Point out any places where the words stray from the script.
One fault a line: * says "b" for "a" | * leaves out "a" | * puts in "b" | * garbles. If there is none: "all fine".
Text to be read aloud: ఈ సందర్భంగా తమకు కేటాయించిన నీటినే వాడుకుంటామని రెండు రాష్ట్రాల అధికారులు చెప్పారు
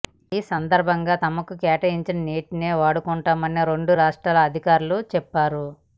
all fine